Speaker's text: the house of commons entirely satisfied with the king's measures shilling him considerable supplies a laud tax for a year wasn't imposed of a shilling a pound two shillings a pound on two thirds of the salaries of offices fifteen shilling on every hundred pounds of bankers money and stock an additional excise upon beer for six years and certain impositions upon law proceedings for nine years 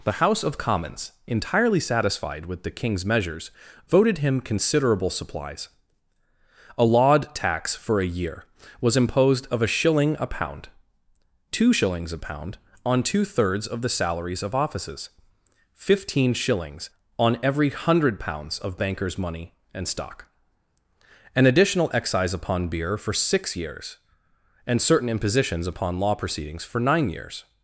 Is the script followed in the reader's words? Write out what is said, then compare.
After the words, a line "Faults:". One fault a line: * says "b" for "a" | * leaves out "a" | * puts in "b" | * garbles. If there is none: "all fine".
the house of commons entirely satisfied with the king's measures voted him considerable supplies a laud tax for a year was imposed of a shilling a pound two shillings a pound on two thirds of the salaries of offices fifteen shillings on every hundred pounds of bankers money and stock an additional excise upon beer for six years and certain impositions upon law proceedings for nine years
Faults:
* says "voted" for "shilling"
* says "was" for "wasn't"
* says "shillings" for "shilling"